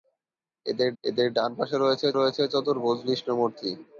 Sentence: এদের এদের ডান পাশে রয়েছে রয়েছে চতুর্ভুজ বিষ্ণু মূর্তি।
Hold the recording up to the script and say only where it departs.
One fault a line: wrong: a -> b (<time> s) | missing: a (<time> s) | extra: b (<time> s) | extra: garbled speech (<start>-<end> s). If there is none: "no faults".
no faults